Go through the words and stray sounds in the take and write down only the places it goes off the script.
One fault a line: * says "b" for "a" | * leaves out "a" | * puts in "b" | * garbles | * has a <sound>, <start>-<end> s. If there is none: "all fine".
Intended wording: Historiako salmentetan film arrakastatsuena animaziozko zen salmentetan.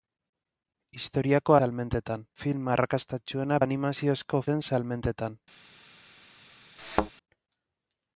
* has a thud, 6.8-7.1 s